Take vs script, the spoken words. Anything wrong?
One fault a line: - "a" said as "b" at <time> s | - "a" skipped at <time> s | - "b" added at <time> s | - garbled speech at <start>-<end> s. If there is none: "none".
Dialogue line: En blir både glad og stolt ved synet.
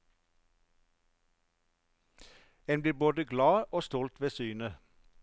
none